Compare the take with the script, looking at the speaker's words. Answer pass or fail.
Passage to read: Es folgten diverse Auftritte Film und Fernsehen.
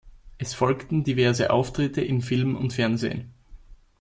fail